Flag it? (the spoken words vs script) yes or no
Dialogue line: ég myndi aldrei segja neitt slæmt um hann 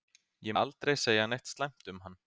yes